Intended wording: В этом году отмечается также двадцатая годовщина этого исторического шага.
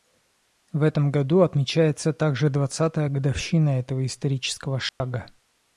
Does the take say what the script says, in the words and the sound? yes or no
no